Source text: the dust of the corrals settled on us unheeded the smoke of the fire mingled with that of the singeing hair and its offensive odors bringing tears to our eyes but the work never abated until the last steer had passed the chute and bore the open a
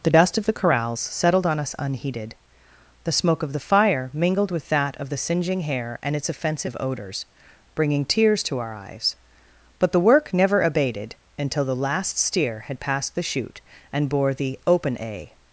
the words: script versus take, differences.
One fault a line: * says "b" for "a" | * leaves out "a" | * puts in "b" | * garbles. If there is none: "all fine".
all fine